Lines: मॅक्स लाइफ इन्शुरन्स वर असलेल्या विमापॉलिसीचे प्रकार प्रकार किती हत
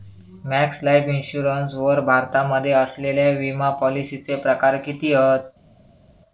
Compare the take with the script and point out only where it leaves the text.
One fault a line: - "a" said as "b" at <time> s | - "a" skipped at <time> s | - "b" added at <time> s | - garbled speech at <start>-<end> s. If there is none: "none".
- "भारतामध्ये" added at 2.0 s
- "प्रकार" skipped at 4.8 s